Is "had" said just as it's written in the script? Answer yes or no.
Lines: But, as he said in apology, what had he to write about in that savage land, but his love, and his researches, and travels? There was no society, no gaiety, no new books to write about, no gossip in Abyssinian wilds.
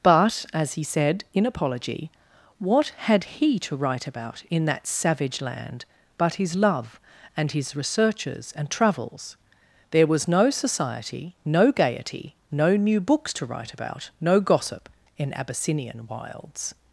yes